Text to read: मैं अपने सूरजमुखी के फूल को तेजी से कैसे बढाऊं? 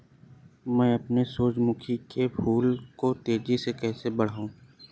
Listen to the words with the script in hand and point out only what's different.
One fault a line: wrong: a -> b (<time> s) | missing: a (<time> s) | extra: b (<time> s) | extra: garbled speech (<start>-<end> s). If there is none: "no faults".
no faults